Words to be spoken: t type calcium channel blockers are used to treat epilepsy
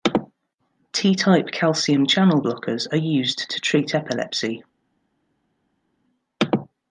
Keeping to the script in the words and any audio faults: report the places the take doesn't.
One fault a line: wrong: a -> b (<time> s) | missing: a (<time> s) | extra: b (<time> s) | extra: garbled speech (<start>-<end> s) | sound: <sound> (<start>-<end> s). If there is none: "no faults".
no faults